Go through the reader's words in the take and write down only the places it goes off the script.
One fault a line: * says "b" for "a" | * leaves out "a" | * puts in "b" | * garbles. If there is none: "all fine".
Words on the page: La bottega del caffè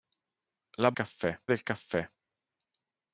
* says "caffè" for "bottega"